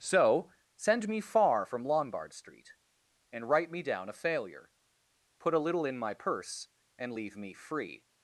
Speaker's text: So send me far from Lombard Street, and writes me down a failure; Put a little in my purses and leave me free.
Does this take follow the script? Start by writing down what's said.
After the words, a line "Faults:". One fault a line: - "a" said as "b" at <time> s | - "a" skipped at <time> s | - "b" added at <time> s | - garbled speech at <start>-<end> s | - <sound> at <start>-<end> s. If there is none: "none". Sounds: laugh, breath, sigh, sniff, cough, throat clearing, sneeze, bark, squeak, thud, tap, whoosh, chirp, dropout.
So send me far from Lombard Street, and write me down a failure; Put a little in my purse and leave me free.
Faults:
- "writes" said as "write" at 3.5 s
- "purses" said as "purse" at 6.2 s